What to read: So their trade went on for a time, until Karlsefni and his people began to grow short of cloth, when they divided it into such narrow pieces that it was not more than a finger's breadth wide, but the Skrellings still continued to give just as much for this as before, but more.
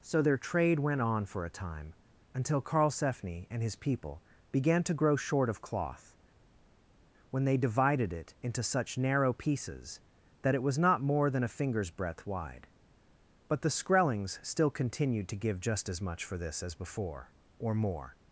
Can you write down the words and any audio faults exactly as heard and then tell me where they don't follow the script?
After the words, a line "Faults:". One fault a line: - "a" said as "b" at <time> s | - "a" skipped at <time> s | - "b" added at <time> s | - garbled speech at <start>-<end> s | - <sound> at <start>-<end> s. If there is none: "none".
So their trade went on for a time, until Karlsefni and his people began to grow short of cloth, when they divided it into such narrow pieces that it was not more than a finger's breadth wide, but the Skrellings still continued to give just as much for this as before, or more.
Faults:
- "but" said as "or" at 17.6 s